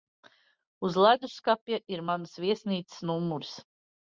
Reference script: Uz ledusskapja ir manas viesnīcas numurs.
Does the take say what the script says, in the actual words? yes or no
yes